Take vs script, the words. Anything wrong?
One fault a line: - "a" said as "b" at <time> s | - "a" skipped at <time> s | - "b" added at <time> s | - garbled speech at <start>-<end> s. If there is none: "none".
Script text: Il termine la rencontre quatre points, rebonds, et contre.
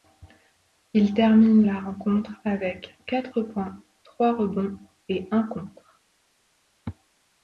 - "avec" added at 2.4 s
- "trois" added at 4.0 s
- "un" added at 5.3 s